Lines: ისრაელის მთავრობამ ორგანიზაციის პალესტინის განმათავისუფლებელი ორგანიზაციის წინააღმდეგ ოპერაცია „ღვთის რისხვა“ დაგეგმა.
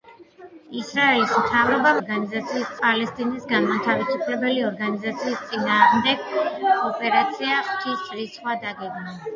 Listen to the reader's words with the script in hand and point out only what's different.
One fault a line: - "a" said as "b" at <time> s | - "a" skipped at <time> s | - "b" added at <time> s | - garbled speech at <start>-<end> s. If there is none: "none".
none